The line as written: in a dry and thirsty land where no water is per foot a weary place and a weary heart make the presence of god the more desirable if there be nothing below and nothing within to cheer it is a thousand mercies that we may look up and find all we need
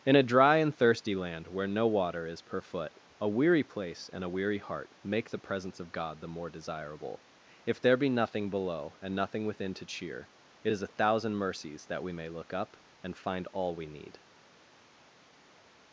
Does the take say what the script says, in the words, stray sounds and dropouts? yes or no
yes